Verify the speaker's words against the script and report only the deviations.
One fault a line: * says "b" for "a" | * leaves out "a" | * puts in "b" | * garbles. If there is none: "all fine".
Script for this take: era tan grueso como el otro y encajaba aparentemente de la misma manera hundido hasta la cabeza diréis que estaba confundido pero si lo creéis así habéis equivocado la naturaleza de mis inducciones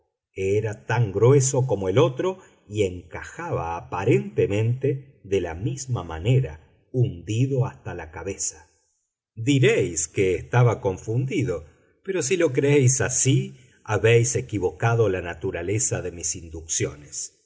all fine